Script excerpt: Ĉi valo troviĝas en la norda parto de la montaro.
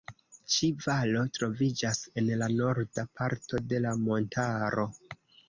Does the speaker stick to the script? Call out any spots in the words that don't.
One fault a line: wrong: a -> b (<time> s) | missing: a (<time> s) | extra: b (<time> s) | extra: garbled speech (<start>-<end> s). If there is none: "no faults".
no faults